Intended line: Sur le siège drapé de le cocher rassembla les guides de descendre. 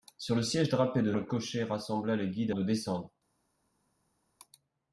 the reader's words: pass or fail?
pass